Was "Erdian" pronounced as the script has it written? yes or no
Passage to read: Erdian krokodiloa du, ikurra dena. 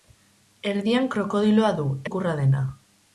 yes